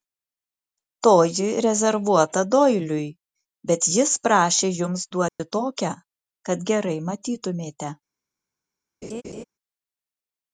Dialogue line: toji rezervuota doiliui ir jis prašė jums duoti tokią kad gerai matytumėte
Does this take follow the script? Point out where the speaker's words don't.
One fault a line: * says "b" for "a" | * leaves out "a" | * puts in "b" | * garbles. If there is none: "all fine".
* says "bet" for "ir"